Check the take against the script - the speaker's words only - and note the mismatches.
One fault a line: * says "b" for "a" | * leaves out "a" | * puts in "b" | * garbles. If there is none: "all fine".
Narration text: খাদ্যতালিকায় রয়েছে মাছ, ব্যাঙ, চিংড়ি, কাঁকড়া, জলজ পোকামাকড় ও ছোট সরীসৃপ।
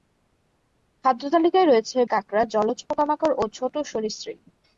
* leaves out "মাছ ব্যাঙ চিংড়ি"